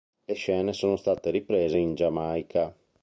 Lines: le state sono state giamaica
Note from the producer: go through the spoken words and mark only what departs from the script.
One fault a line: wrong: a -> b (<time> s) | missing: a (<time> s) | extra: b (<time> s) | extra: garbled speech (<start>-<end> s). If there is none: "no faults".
wrong: state -> scene (0.3 s)
extra: riprese in (1.3 s)